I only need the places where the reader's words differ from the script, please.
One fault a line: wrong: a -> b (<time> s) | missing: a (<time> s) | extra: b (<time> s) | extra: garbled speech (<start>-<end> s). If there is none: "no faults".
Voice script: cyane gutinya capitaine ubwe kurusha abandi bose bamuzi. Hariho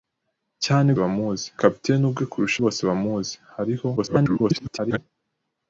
wrong: gutinya -> bamuzi (1.0 s)
missing: abandi (2.6 s)
extra: garbled speech (4.0-5.0 s)